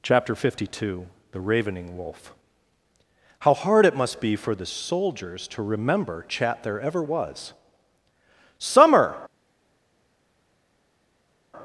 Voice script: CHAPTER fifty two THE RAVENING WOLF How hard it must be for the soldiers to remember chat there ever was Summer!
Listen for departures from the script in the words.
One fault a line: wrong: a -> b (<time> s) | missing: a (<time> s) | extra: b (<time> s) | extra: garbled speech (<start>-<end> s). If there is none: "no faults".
no faults